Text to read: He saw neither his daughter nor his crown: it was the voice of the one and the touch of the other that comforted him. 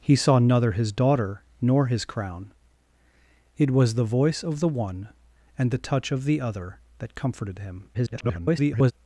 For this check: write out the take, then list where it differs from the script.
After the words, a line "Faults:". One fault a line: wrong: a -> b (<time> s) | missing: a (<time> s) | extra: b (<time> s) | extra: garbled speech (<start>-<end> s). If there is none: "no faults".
He saw neither his daughter nor his crown: it was the voice of the one and the touch of the other that comforted him. [garbled]
Faults:
extra: garbled speech (7.9-8.9 s)